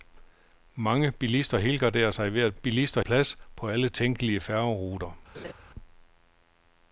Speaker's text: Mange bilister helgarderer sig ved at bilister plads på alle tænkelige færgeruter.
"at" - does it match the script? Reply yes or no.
yes